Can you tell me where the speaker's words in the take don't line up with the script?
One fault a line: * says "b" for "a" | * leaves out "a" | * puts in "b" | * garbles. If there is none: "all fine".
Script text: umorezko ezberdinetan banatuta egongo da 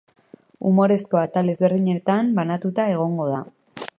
* puts in "atal"